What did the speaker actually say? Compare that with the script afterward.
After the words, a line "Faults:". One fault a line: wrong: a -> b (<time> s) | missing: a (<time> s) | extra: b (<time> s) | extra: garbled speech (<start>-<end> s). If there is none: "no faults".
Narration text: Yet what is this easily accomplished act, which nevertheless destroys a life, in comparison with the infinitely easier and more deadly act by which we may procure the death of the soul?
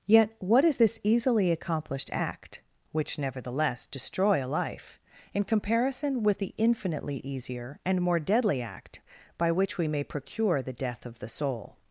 Yet what is this easily accomplished act, which nevertheless destroy a life, in comparison with the infinitely easier and more deadly act by which we may procure the death of the soul?
Faults:
wrong: destroys -> destroy (3.9 s)